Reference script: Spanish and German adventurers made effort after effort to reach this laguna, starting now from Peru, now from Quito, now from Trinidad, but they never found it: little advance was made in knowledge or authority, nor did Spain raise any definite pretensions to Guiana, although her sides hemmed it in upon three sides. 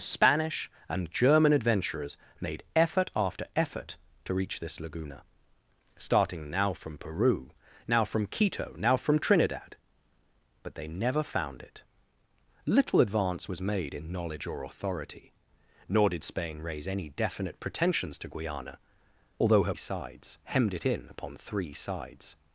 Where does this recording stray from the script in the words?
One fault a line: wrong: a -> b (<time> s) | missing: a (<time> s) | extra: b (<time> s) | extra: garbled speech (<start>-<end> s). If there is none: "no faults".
no faults